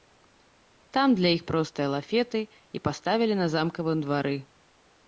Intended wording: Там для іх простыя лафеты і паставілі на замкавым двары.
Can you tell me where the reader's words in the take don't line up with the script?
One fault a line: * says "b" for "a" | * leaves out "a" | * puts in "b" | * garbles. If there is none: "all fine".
all fine